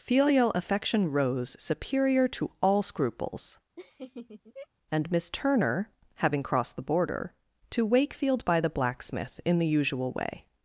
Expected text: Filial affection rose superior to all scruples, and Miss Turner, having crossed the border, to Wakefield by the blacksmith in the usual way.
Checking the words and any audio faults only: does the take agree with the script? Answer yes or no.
no